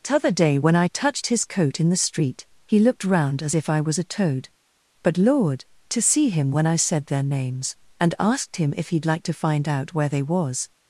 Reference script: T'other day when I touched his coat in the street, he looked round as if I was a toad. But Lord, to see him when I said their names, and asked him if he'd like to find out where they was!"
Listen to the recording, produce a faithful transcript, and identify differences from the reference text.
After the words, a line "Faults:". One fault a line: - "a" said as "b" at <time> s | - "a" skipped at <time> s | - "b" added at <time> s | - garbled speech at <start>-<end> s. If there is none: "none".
T'other day when I touched his coat in the street, he looked round as if I was a toad. But Lord, to see him when I said their names, and asked him if he'd like to find out where they was!"
Faults:
none